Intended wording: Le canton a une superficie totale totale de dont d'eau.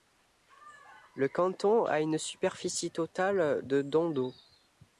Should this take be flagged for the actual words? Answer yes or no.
yes